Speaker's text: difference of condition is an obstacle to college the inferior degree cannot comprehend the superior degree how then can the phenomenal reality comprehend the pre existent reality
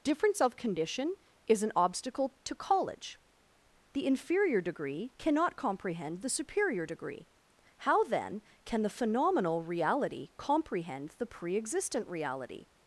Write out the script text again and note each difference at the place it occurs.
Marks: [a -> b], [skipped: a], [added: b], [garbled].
difference of condition is an obstacle to college the inferior degree cannot comprehend the superior degree how then can the phenomenal reality comprehend the pre existent reality